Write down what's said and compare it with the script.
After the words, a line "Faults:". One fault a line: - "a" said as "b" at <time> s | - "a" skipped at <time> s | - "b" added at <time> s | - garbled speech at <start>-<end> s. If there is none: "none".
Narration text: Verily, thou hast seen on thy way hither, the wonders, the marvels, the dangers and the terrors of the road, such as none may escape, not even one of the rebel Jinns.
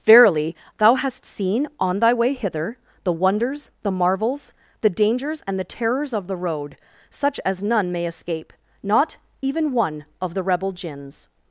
Verily, thou hast seen on thy way hither, the wonders, the marvels, the dangers and the terrors of the road, such as none may escape, not even one of the rebel Jinns.
Faults:
none